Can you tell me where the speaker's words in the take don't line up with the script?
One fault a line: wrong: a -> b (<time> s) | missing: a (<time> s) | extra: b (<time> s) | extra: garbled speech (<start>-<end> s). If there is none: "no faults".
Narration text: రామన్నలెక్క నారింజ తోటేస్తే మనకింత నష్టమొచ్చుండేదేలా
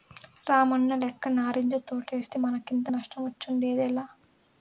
no faults